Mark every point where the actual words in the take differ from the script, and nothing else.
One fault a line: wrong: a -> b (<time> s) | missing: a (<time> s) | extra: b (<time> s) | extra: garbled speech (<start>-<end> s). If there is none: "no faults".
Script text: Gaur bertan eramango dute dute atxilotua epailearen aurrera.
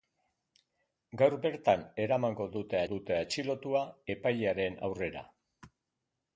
no faults